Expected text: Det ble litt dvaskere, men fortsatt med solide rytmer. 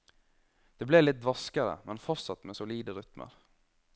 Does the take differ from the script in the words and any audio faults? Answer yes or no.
no